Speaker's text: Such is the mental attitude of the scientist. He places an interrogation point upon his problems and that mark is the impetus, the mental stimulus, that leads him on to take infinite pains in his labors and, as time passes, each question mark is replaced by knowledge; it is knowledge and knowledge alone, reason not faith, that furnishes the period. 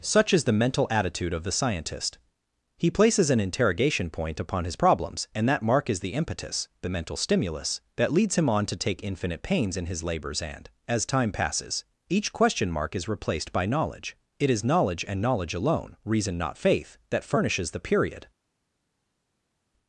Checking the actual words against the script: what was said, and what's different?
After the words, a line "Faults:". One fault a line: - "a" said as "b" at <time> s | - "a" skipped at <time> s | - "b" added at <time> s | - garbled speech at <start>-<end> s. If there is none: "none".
Such is the mental attitude of the scientist. He places an interrogation point upon his problems and that mark is the impetus, the mental stimulus, that leads him on to take infinite pains in his labors and, as time passes, each question mark is replaced by knowledge; it is knowledge and knowledge alone, reason not faith, that furnishes the period.
Faults:
none